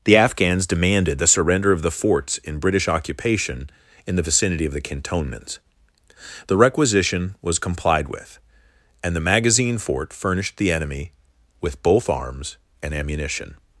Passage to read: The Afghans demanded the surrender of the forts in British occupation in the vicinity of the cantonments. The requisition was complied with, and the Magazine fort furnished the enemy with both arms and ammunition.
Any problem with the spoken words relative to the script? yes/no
no